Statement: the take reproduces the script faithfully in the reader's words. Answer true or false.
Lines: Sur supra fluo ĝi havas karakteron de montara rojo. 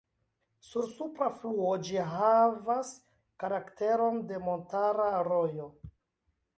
true